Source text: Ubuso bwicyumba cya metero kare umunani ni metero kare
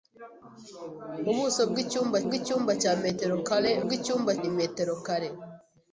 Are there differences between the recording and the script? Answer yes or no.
yes